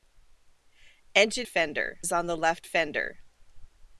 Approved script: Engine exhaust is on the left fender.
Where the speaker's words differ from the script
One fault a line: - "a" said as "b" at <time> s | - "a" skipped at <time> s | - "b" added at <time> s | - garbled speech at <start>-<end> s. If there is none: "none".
- "exhaust" said as "fender" at 1.5 s